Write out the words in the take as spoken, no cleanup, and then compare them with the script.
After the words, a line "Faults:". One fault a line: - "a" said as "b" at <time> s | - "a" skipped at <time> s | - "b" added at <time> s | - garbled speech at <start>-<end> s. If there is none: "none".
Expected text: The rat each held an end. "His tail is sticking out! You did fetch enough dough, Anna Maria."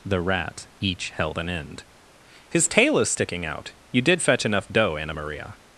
The rat each held an end. "His tail is sticking out! You did fetch enough dough, Anna Maria."
Faults:
none